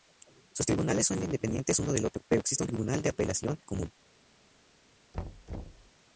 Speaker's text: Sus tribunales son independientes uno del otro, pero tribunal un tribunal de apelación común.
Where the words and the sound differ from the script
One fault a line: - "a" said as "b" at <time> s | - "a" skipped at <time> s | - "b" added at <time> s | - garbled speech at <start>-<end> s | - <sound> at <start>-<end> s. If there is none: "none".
- "tribunal" said as "existe" at 2.4 s
- thud at 5.1-5.9 s